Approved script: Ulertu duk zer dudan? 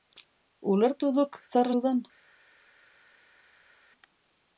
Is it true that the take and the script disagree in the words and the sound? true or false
false